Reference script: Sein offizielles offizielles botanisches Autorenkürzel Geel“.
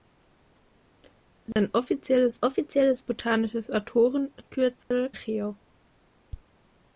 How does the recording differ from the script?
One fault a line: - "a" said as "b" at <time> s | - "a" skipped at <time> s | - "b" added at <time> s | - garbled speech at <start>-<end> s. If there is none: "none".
none